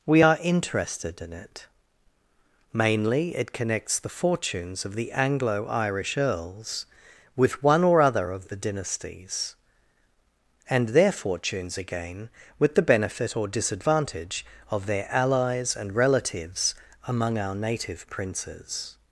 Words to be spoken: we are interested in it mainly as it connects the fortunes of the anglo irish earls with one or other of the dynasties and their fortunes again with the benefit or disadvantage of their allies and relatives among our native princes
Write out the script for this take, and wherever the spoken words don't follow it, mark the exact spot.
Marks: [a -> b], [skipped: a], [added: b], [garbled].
we are interested in it mainly [skipped: as] it connects the fortunes of the anglo irish earls with one or other of the dynasties and their fortunes again with the benefit or disadvantage of their allies and relatives among our native princes